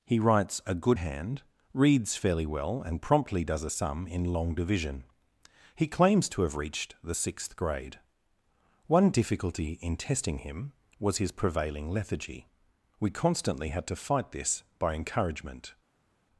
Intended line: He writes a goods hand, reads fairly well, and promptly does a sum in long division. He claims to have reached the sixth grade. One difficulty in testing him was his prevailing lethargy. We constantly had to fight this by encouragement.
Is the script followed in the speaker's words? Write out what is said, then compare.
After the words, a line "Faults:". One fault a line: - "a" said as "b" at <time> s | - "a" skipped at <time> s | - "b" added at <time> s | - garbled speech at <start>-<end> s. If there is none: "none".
He writes a good hand, reads fairly well, and promptly does a sum in long division. He claims to have reached the sixth grade. One difficulty in testing him was his prevailing lethargy. We constantly had to fight this by encouragement.
Faults:
- "goods" said as "good" at 0.8 s